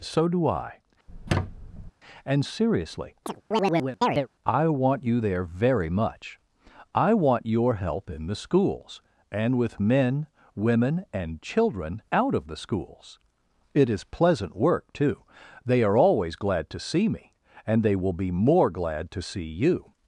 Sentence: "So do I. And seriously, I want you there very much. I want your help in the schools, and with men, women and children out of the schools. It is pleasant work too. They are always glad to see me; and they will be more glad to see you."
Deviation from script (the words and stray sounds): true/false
true